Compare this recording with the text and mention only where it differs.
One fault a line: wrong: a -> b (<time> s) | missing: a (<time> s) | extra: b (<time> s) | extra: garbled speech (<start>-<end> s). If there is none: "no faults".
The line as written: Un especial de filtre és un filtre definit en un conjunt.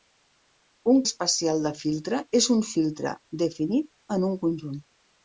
no faults